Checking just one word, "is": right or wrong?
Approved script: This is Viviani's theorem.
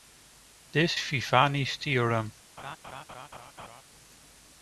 wrong